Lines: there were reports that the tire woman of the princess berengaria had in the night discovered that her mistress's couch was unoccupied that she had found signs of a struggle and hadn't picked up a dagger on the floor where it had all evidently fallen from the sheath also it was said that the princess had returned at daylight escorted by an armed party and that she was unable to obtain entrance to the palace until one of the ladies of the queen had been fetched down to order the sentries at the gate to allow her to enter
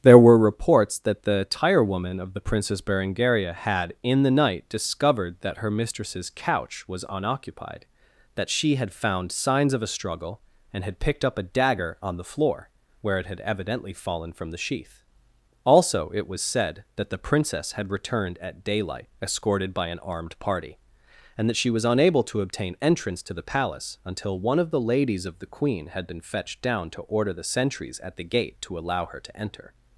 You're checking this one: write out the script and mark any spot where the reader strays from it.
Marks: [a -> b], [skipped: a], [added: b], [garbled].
there were reports that the tire woman of the princess berengaria had in the night discovered that her mistress's couch was unoccupied that she had found signs of a struggle and [hadn't -> had] picked up a dagger on the floor where it had [skipped: all] evidently fallen from the sheath also it was said that the princess had returned at daylight escorted by an armed party and that she was unable to obtain entrance to the palace until one of the ladies of the queen had been fetched down to order the sentries at the gate to allow her to enter